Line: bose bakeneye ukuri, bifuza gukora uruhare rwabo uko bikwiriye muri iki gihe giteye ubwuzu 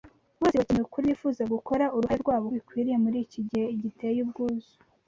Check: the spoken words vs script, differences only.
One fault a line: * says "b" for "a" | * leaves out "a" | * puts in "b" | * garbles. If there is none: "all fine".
* leaves out "uko"